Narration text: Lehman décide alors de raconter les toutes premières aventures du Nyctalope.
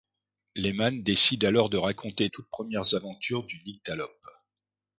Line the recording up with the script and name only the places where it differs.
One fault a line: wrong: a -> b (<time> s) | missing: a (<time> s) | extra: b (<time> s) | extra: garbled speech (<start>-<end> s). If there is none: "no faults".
missing: les (2.3 s)